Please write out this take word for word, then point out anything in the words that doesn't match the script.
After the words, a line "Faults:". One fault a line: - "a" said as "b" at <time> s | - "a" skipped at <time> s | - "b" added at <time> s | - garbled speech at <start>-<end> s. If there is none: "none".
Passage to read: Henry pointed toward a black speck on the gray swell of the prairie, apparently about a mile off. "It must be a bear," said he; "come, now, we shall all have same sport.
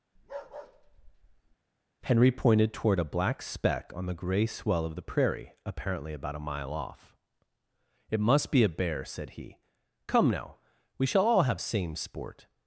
Henry pointed toward a black speck on the gray swell of the prairie, apparently about a mile off. "It must be a bear," said he; "come, now, we shall all have same sport.
Faults:
none